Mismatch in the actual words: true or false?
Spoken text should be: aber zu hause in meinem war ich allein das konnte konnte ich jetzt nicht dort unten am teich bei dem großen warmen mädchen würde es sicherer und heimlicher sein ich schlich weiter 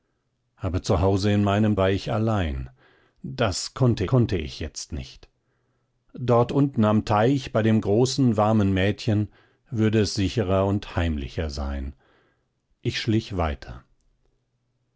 false